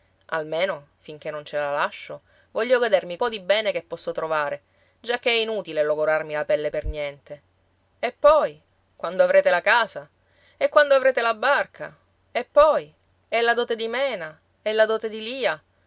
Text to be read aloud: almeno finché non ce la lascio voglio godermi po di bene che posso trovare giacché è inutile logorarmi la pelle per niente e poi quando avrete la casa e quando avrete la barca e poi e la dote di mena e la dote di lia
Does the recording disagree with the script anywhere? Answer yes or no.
no